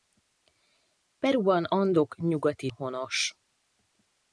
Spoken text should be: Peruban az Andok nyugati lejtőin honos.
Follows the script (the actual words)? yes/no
no